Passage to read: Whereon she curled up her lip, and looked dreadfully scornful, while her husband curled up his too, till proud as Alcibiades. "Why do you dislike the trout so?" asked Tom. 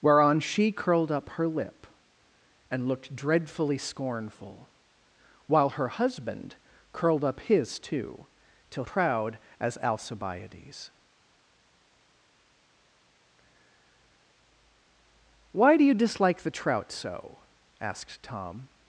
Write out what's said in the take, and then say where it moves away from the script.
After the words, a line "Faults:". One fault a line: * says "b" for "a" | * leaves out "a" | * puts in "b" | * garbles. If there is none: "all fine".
Whereon she curled up her lip, and looked dreadfully scornful, while her husband curled up his too, till proud as Alcibiades. "Why do you dislike the trout so?" asked Tom.
Faults:
all fine